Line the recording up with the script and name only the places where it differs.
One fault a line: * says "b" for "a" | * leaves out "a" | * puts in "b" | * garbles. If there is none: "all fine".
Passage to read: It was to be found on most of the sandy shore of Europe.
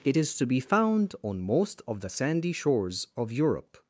* says "is" for "was"
* says "shores" for "shore"